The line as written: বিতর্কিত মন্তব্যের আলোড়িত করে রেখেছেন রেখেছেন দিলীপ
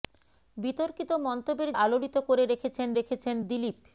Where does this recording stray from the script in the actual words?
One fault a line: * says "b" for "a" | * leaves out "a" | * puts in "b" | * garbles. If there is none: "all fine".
all fine